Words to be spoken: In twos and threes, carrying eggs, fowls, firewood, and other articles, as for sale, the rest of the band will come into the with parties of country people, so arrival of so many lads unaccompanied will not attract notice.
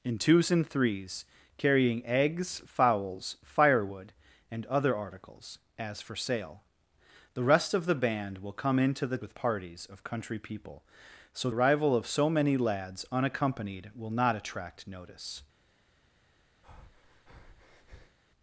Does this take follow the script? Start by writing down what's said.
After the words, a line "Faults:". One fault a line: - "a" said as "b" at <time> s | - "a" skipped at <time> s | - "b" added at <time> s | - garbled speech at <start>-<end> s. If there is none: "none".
In twos and threes, carrying eggs, fowls, firewood, and other articles, as for sale, the rest of the band will come into the with parties of country people, so arrival of so many lads unaccompanied will not attract notice.
Faults:
none